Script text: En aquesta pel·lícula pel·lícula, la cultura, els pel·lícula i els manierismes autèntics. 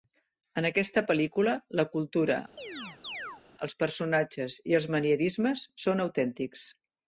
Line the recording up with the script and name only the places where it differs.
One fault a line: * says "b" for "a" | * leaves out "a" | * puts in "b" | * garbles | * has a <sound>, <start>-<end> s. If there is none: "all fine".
* leaves out "pel·lícula"
* has a chirp, 2.6-3.4 s
* says "personatges" for "pel·lícula"
* puts in "són"